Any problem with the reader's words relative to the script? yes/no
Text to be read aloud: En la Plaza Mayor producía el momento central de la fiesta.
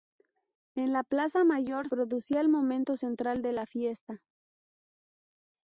no